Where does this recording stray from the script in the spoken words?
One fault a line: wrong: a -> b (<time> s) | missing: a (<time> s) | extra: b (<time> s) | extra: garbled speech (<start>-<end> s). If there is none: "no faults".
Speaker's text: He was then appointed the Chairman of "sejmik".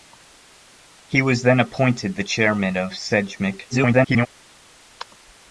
extra: garbled speech (3.7-4.3 s)